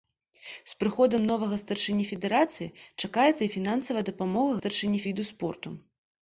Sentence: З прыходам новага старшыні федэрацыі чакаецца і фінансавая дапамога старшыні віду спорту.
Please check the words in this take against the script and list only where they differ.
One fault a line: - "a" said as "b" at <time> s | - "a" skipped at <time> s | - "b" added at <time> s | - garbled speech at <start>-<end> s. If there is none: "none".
none